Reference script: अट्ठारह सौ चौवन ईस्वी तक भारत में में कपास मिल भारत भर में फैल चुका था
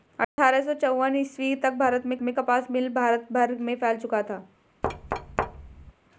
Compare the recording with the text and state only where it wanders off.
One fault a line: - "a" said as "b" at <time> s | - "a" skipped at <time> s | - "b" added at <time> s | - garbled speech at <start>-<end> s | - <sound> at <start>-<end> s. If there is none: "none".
- dropout at 0.2-0.4 s
- thud at 4.8-5.9 s